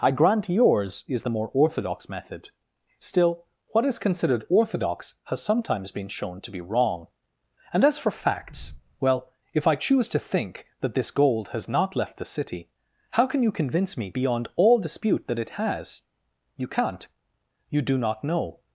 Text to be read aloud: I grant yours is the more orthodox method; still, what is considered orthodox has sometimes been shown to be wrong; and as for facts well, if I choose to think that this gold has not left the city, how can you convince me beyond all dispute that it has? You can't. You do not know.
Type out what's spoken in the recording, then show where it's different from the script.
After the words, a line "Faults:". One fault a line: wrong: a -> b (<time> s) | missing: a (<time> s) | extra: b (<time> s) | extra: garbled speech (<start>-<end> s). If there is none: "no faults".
I grant yours is the more orthodox method; still, what is considered orthodox has sometimes been shown to be wrong; and as for facts well, if I choose to think that this gold has not left the city, how can you convince me beyond all dispute that it has? You can't. You do not know.
Faults:
no faults